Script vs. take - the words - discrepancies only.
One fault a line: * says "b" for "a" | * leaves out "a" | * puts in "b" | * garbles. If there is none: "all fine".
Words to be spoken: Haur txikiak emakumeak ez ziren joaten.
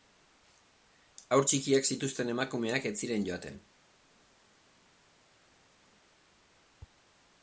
* puts in "zituzten"